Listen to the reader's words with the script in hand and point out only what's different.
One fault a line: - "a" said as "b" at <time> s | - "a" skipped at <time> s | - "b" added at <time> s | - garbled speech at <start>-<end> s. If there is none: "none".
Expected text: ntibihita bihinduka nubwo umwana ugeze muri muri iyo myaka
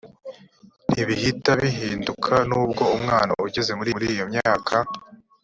none